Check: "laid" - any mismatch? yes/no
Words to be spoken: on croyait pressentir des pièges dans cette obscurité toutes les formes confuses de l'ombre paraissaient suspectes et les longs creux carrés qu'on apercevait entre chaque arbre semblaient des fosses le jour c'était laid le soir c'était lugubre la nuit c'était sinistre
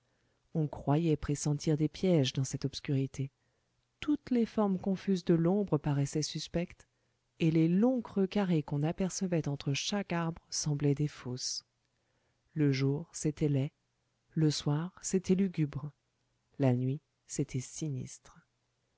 no